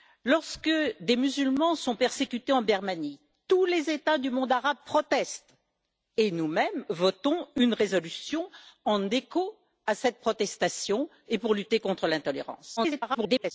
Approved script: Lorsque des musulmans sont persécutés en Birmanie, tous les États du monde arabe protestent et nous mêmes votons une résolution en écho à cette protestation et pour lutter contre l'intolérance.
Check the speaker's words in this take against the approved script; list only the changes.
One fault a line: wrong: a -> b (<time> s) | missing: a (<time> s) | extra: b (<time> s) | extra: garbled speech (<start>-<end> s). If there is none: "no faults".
extra: garbled speech (12.8-13.5 s)